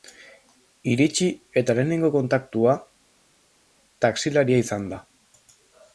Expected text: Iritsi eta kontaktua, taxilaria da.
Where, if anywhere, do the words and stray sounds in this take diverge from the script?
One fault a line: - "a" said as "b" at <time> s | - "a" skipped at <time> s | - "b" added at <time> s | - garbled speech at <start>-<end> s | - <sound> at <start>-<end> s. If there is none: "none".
- "lehenengo" added at 1.8 s
- "izan" added at 4.7 s